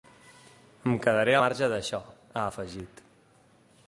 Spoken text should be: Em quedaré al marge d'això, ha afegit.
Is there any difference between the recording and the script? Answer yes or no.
yes